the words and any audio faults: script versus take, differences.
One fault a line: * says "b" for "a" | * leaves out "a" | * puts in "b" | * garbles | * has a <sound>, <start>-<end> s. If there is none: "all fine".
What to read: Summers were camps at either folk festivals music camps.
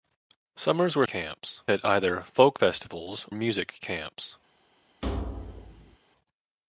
* has a thud, 5.0-6.0 s